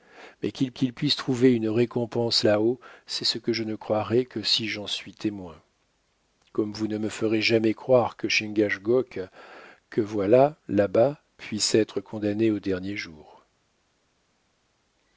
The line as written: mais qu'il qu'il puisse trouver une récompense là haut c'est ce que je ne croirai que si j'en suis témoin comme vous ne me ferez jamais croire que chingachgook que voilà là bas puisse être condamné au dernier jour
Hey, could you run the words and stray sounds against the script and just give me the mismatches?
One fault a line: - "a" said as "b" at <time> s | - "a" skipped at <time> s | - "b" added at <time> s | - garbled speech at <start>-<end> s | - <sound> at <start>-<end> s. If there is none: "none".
none